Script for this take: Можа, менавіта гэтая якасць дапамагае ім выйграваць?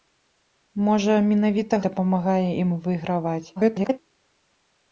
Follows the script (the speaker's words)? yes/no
no